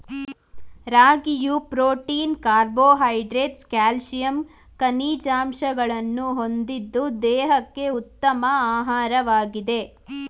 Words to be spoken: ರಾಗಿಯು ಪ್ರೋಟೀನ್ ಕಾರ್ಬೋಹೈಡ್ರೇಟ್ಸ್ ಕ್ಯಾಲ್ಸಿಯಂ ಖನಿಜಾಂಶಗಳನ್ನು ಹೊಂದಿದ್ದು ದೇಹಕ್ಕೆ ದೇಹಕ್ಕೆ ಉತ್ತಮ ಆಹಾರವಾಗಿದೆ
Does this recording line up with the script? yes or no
no